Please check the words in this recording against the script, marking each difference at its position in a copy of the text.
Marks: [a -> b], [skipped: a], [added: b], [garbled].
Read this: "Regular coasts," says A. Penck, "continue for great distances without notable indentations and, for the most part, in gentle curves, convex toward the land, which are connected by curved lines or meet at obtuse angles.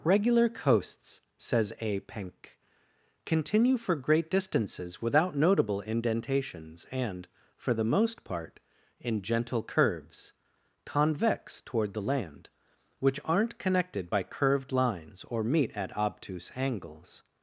"Regular coasts," says A. Penck, "continue for great distances without notable indentations and, for the most part, in gentle curves, convex toward the land, which [are -> aren't] connected by curved lines or meet at obtuse angles.